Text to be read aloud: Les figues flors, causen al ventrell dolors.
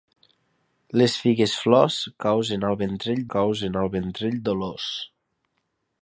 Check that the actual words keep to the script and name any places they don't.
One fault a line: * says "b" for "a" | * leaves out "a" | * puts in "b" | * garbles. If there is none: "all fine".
* puts in "causen al ventrell"